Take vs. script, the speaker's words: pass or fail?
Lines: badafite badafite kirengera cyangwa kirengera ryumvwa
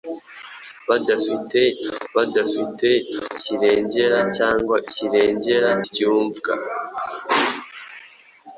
pass